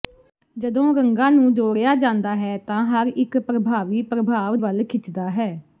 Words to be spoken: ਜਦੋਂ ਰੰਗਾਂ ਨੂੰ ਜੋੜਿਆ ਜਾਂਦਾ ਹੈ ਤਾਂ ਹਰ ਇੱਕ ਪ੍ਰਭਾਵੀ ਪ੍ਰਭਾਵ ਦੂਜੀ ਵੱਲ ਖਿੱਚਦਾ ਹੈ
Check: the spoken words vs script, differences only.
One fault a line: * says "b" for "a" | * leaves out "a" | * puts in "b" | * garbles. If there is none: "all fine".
* leaves out "ਦੂਜੀ"